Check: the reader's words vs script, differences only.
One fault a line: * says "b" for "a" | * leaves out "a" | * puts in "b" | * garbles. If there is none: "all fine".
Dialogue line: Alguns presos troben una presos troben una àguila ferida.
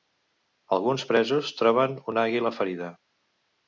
* leaves out "presos troben una"